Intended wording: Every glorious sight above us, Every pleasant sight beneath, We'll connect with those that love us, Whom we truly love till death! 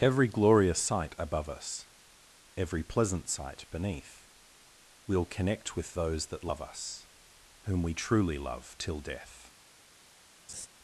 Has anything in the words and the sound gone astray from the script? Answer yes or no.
yes